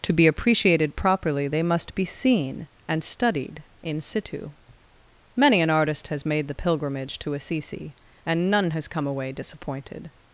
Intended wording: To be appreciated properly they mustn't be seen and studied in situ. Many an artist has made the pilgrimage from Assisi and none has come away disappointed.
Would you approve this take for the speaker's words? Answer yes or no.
no